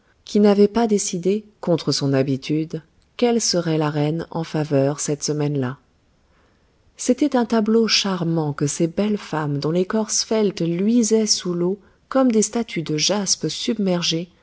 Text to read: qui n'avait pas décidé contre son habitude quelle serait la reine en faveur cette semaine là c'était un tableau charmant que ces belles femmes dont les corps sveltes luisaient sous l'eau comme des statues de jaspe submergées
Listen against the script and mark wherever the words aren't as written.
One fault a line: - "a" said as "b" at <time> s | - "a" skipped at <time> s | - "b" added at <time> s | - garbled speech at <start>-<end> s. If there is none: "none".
none